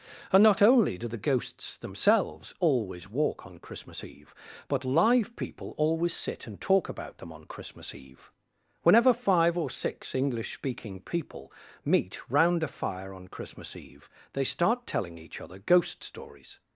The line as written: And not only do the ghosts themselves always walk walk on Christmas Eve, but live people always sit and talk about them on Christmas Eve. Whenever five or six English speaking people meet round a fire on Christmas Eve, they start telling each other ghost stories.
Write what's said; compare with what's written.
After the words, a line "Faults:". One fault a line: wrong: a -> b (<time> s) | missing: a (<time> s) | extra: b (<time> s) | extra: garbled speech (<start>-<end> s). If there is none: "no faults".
And not only do the ghosts themselves always walk on Christmas Eve, but live people always sit and talk about them on Christmas Eve. Whenever five or six English speaking people meet round a fire on Christmas Eve, they start telling each other ghost stories.
Faults:
missing: walk (3.5 s)